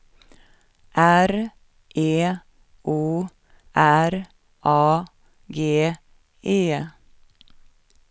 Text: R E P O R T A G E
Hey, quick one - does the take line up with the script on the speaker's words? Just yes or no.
no